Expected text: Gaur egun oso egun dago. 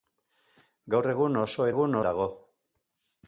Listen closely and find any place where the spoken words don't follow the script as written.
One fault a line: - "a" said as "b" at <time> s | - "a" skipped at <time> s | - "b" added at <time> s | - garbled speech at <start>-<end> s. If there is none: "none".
none